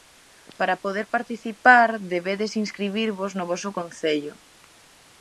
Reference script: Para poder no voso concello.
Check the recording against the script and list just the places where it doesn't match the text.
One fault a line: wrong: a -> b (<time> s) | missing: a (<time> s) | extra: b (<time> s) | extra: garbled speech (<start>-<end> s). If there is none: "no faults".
extra: participar debedes inscribirvos (1.2 s)